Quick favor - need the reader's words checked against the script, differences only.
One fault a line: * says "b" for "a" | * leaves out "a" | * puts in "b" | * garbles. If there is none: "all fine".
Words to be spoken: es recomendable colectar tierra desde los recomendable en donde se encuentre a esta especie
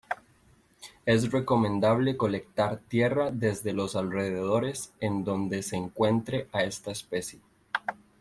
* says "alrededores" for "recomendable"